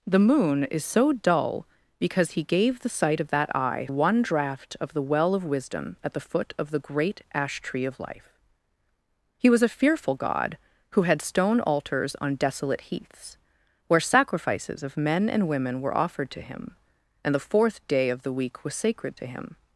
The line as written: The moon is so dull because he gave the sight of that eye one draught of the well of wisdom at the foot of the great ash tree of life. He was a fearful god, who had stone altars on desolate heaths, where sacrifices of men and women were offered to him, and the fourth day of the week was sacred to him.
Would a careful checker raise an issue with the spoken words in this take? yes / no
no